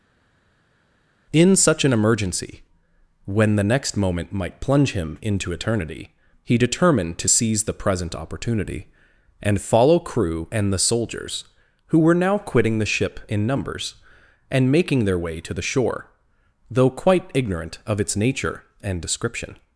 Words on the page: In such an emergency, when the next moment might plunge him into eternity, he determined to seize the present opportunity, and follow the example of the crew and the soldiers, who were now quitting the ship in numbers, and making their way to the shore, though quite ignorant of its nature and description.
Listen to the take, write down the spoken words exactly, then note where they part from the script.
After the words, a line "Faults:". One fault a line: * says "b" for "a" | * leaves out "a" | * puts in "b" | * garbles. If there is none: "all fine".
In such an emergency, when the next moment might plunge him into eternity, he determined to seize the present opportunity, and follow crew and the soldiers, who were now quitting the ship in numbers, and making their way to the shore, though quite ignorant of its nature and description.
Faults:
* leaves out "the example of the"